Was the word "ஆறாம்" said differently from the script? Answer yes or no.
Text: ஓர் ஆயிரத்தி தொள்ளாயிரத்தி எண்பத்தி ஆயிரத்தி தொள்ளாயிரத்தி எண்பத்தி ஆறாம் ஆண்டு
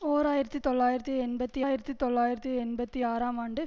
no